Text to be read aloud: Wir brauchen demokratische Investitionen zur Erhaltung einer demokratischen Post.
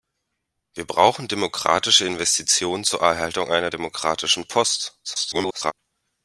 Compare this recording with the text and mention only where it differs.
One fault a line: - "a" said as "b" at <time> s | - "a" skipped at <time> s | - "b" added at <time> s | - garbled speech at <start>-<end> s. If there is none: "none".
- garbled speech at 5.0-5.7 s